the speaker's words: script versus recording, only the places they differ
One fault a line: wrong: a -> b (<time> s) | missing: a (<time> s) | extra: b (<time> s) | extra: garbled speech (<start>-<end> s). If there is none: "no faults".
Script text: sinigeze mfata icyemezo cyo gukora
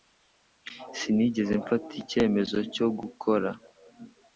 no faults